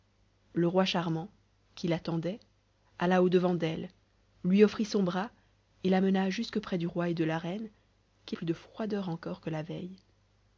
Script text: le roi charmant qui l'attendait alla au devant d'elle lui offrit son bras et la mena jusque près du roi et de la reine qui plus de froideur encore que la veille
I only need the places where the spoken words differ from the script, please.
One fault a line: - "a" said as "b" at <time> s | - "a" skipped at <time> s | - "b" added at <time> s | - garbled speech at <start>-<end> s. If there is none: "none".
none